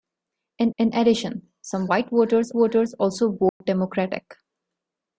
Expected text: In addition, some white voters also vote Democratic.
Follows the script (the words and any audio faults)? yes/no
no